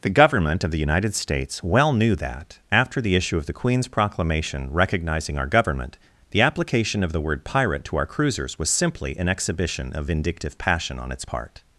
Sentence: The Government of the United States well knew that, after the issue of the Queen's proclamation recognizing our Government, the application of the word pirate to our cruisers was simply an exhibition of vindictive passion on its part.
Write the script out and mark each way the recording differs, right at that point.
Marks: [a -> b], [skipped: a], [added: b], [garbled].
The Government of the United States well knew that, after the issue of the Queen's proclamation recognizing our Government, the application of the word pirate to our cruisers was simply an exhibition of vindictive passion on its part.